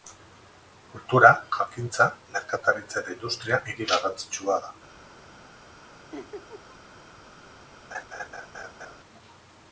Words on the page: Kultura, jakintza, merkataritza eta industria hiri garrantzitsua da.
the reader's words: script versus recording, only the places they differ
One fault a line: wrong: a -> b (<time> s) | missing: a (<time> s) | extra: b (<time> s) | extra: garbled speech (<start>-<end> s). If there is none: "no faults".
no faults